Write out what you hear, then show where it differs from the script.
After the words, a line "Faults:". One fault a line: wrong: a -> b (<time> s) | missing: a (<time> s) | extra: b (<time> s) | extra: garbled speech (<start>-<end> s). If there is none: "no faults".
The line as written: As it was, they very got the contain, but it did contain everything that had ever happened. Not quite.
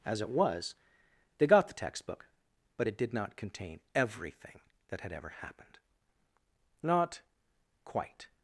As it was, they got the textbook, but it did not contain everything that had ever happened. Not quite.
Faults:
missing: very (1.5 s)
wrong: contain -> textbook (1.7 s)
extra: not (3.1 s)